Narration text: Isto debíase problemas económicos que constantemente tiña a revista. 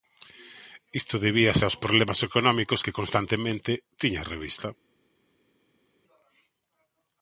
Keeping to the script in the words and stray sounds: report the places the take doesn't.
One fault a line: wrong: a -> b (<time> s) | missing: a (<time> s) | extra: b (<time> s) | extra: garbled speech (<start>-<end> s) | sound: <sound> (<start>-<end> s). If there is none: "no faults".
extra: aos (1.6 s)